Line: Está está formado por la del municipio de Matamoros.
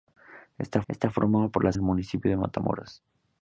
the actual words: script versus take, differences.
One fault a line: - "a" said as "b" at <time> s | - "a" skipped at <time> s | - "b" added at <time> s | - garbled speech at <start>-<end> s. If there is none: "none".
none